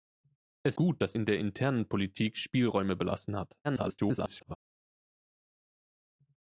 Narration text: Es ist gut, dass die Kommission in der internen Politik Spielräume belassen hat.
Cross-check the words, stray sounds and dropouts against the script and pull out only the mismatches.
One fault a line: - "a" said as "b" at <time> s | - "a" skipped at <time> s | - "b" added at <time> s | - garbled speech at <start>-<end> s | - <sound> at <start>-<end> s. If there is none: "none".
- "ist" skipped at 0.8 s
- "die Kommission" skipped at 1.2 s
- garbled speech at 3.6-4.6 s